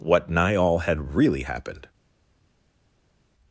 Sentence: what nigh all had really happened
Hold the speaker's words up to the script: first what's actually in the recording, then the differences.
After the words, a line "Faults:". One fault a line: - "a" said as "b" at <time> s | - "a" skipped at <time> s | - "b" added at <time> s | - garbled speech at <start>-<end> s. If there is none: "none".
what nigh all had really happened
Faults:
none